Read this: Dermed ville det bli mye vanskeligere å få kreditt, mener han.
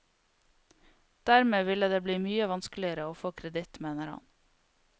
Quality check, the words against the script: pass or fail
pass